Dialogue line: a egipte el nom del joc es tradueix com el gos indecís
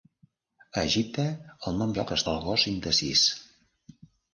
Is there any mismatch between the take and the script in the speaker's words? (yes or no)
yes